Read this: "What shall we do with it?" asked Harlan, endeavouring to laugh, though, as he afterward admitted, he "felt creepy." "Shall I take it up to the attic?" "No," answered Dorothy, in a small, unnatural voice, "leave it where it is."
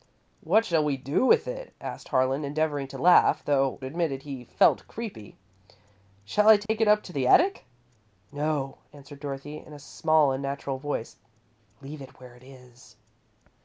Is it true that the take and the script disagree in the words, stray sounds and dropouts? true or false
true